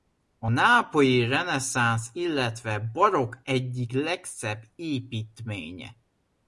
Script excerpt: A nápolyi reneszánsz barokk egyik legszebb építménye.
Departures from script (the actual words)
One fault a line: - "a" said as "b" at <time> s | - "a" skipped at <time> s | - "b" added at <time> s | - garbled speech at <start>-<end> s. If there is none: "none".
- "illetve" added at 2.1 s